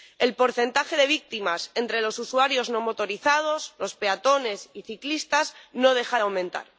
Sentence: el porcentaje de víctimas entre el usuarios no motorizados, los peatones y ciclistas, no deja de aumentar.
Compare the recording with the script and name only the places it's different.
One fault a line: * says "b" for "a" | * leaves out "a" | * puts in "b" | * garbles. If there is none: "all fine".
* says "los" for "el"